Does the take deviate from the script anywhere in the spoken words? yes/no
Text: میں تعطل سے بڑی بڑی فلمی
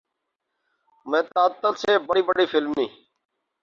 no